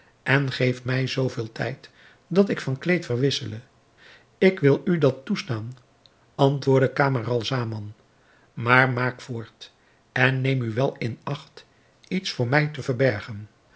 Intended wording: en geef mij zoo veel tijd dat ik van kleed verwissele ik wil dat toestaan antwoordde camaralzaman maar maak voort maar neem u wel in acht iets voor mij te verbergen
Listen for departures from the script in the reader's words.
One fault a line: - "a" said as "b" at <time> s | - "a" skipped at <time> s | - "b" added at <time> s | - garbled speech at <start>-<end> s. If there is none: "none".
- "u" added at 4.8 s
- "maar" said as "en" at 10.1 s